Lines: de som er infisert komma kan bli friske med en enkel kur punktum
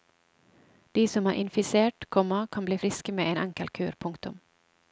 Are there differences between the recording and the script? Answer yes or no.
no